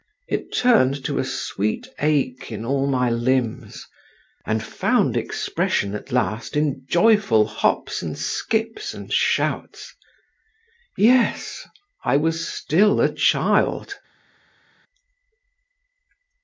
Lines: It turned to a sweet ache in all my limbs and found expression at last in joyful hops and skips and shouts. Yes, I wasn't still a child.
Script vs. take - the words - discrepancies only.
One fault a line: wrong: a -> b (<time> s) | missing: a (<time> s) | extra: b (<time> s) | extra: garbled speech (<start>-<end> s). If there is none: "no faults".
wrong: wasn't -> was (12.1 s)